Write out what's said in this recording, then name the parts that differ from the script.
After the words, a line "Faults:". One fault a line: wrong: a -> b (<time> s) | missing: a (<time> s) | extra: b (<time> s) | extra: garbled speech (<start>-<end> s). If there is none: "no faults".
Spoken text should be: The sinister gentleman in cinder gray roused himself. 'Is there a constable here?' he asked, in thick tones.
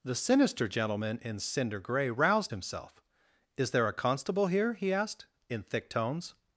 The sinister gentleman in cinder gray roused himself. 'Is there a constable here?' he asked, in thick tones.
Faults:
no faults